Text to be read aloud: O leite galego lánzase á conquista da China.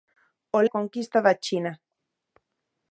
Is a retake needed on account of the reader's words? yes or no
yes